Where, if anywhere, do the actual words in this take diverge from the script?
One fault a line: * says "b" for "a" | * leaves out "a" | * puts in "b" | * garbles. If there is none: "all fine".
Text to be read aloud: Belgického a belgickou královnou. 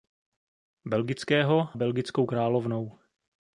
* leaves out "a"